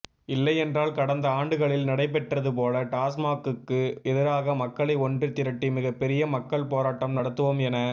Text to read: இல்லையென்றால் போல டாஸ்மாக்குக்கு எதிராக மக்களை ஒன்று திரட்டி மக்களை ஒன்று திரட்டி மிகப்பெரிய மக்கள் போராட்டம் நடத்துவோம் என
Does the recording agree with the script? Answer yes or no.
no